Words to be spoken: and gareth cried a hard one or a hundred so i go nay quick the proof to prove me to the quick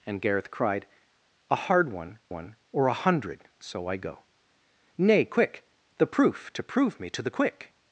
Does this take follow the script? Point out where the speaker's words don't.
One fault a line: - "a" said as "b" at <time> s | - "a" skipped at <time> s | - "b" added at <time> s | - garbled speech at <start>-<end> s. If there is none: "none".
- "one" added at 2.3 s